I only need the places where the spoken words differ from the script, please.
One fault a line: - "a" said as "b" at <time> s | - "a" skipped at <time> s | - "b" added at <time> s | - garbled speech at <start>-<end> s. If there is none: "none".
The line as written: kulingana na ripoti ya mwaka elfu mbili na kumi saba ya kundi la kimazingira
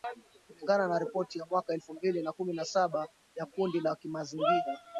- "na" added at 2.5 s